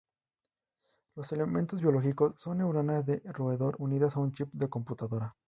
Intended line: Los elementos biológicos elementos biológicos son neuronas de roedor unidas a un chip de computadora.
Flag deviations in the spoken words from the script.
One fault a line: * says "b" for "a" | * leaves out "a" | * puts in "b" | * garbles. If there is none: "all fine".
* leaves out "elementos biológicos"